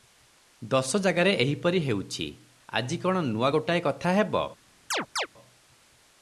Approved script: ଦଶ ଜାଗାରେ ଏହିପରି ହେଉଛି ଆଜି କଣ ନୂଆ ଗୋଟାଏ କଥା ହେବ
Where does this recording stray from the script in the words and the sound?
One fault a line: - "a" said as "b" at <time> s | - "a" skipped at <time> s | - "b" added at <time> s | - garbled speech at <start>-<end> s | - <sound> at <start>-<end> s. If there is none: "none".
- chirp at 4.9-5.3 s